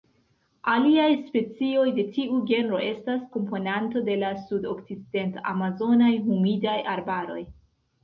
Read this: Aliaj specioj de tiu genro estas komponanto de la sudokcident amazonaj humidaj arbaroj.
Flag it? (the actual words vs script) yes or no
no